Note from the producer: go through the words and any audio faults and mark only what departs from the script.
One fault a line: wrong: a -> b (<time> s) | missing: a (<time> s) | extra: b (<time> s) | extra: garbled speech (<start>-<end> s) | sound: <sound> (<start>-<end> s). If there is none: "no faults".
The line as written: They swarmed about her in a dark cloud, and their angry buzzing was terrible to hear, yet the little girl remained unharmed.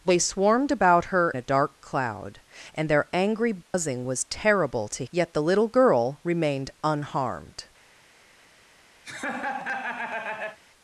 missing: in (1.3 s)
sound: dropout (3.6-3.7 s)
missing: hear (5.0 s)
sound: laugh (9.0-10.6 s)